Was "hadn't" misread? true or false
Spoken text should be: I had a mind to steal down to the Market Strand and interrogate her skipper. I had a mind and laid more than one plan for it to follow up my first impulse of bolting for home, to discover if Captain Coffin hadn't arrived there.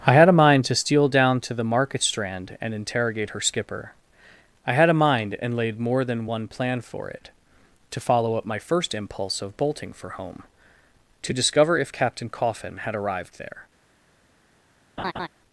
true